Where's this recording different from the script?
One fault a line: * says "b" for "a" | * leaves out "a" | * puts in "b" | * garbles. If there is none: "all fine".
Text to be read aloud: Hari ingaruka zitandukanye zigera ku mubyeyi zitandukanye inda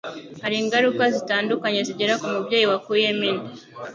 * says "wakuyemo" for "zitandukanye"